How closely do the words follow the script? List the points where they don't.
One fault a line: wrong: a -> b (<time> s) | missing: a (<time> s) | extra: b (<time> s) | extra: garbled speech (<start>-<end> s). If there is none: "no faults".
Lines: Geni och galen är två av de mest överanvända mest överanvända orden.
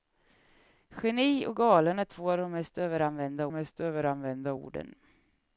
no faults